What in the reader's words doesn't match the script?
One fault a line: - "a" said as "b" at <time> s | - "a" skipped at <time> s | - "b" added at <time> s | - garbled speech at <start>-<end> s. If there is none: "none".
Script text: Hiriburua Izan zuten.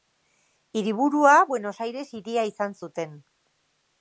- "Buenos Aires hiria" added at 1.5 s